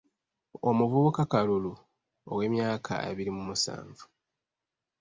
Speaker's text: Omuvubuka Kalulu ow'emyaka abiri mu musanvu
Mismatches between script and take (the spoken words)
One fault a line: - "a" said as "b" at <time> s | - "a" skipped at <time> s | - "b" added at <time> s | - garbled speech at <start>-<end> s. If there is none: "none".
none